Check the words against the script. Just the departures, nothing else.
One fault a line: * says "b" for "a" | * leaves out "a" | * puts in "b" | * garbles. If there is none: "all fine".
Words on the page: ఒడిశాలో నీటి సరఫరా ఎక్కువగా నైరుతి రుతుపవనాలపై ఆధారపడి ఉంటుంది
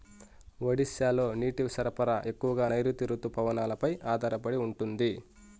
all fine